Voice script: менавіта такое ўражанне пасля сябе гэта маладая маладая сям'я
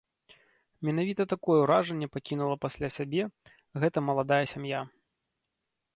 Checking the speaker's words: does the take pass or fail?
fail